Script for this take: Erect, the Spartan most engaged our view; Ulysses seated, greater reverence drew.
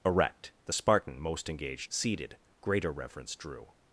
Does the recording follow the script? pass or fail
fail